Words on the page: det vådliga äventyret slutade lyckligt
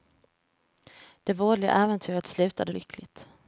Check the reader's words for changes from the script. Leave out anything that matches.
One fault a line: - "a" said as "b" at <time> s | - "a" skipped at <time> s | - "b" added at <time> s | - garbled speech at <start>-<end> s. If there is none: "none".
none